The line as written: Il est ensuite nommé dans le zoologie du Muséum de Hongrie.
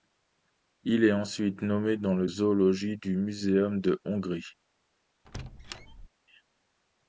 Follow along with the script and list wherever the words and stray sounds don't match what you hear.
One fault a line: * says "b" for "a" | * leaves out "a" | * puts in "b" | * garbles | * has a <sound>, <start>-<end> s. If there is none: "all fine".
* has a squeak, 5.3-6.1 s